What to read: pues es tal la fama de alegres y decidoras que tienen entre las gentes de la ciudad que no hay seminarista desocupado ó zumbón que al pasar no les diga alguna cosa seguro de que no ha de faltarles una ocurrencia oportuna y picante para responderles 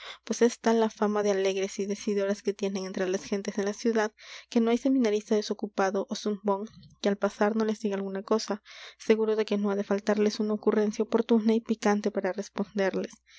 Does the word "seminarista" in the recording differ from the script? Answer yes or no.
no